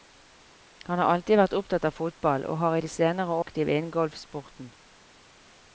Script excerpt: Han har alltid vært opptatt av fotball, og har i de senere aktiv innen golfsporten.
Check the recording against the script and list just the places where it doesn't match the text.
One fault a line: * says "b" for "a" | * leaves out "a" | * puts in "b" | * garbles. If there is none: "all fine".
all fine